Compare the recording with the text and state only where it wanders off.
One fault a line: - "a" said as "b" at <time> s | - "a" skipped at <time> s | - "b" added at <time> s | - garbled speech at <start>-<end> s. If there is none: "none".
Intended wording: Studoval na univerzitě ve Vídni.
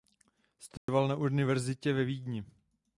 none